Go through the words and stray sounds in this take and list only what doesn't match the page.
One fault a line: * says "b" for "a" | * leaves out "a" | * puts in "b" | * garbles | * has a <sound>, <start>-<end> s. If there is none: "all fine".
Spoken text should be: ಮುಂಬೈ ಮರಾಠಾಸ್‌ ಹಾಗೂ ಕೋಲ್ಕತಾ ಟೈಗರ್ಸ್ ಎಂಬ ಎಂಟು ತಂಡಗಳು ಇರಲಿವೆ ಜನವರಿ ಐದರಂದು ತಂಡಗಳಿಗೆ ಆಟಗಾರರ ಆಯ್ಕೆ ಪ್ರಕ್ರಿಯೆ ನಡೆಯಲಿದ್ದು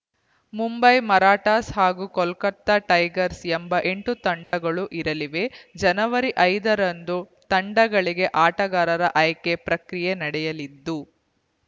* has a dropout, 4.4-4.5 s